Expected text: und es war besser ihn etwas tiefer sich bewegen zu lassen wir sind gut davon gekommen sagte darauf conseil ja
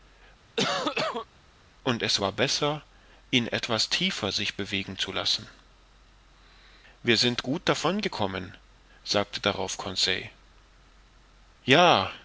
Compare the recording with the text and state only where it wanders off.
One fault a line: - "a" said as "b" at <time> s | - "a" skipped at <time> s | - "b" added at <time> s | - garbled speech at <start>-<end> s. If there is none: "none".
none